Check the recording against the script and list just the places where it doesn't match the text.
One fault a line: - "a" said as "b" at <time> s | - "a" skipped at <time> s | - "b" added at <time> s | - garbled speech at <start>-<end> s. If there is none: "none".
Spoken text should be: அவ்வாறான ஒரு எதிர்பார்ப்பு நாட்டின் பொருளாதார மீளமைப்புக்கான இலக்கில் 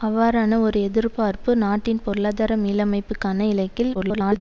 - garbled speech at 3.9-4.4 s